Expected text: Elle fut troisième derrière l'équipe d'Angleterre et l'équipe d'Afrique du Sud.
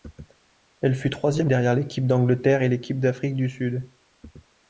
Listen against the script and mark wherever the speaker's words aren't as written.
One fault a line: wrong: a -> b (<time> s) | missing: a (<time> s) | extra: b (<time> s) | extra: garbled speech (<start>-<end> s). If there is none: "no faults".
no faults